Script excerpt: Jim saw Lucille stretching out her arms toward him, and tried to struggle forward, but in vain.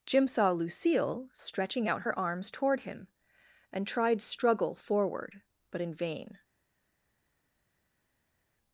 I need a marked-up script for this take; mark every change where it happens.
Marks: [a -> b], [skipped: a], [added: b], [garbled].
Jim saw Lucille stretching out her arms toward him, and tried [skipped: to] struggle forward, but in vain.